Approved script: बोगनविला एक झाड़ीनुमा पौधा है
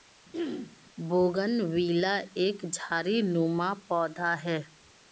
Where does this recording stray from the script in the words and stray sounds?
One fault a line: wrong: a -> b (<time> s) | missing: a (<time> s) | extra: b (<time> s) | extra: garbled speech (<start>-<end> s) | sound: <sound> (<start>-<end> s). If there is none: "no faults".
sound: throat clearing (0.3-0.8 s)